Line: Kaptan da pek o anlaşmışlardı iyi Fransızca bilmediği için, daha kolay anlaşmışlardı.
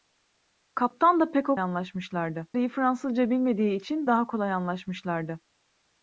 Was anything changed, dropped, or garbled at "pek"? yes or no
no